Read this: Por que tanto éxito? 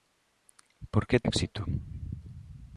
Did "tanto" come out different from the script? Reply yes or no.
yes